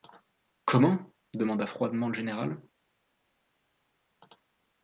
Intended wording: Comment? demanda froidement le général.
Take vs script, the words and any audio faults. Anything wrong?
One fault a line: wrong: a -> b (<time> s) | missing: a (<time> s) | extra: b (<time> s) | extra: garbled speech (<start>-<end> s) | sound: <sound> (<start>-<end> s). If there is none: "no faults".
no faults